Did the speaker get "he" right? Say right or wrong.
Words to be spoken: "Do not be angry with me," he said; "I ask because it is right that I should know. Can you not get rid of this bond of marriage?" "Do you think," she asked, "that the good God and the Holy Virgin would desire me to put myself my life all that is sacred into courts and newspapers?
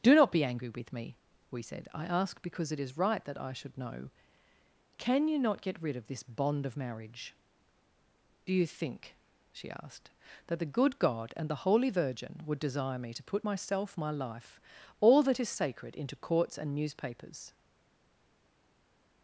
wrong